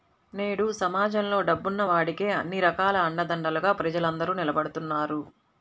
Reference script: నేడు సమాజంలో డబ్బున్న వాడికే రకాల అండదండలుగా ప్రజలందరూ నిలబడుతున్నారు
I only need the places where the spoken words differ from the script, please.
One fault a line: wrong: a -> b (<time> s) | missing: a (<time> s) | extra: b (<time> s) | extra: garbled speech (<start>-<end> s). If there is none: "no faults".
extra: అన్ని (2.4 s)